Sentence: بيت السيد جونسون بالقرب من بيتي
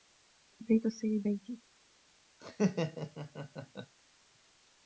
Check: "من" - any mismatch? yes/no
yes